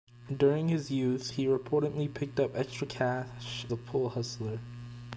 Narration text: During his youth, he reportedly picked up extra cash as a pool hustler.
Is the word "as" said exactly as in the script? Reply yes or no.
no